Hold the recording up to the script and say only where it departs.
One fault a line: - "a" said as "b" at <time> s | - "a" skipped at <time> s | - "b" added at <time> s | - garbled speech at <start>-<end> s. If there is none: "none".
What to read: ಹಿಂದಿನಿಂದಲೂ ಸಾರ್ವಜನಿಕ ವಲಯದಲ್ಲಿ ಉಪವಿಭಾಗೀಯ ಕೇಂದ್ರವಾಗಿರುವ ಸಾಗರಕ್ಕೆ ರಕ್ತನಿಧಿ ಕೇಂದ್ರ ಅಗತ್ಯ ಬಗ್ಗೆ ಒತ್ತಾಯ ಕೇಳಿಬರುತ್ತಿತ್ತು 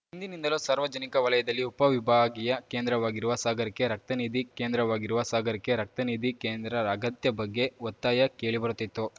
- "ಕೇಂದ್ರವಾಗಿರುವ ಸಾಗರಕ್ಕೆ ರಕ್ತನಿಧಿ" added at 4.5 s